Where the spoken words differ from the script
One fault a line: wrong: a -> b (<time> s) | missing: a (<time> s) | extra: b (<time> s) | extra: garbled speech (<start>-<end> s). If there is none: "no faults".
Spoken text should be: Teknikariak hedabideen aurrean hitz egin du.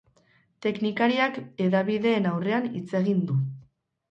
no faults